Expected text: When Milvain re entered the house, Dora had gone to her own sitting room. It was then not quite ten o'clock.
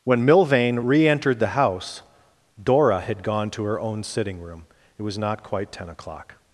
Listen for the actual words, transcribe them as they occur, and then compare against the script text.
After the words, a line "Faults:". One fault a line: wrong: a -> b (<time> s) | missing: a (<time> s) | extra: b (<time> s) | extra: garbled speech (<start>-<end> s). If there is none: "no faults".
When Milvain re entered the house, Dora had gone to her own sitting room. It was not quite ten o'clock.
Faults:
missing: then (5.2 s)